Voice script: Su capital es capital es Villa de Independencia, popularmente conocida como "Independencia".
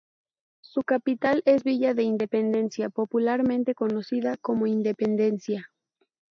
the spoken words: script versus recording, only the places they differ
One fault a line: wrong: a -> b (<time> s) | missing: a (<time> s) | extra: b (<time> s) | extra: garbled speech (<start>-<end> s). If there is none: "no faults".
missing: capital es (1.6 s)